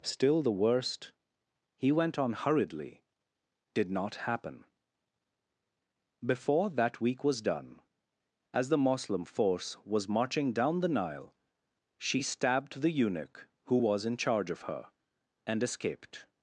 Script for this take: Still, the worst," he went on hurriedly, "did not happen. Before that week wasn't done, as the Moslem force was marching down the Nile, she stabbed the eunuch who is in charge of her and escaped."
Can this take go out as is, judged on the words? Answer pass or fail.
fail